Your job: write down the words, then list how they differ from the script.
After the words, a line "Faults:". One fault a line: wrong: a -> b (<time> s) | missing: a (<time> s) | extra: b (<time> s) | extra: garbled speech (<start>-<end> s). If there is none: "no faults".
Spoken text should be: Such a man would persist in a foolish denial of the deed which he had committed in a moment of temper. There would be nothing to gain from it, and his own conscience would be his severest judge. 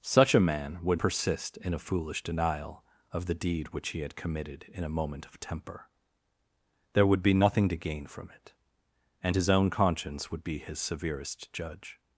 Such a man would persist in a foolish denial of the deed which he had committed in a moment of temper. There would be nothing to gain from it, and his own conscience would be his severest judge.
Faults:
no faults